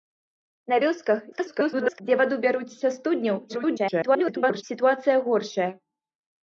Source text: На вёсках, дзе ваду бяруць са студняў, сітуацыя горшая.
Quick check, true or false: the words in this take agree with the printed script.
false